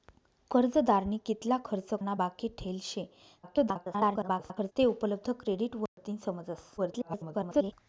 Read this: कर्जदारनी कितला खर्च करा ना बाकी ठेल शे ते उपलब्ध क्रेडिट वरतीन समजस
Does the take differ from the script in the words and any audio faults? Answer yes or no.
yes